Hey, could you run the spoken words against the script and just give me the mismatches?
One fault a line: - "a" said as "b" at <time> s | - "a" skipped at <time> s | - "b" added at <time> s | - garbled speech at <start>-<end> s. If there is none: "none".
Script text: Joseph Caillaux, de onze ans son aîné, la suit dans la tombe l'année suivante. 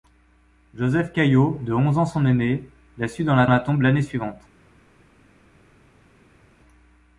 - "la" added at 3.5 s